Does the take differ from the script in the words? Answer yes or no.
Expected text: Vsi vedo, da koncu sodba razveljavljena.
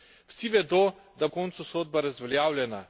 no